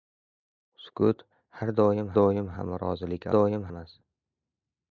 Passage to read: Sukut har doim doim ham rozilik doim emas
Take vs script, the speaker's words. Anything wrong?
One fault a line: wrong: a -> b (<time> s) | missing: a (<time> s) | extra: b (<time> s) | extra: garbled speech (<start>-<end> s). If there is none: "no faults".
no faults